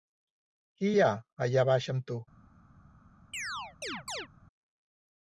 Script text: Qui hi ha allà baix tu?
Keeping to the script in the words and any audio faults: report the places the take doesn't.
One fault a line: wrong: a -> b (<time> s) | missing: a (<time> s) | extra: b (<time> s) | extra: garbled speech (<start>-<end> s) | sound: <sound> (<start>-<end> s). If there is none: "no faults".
extra: amb (1.9 s)
sound: chirp (3.3-4.3 s)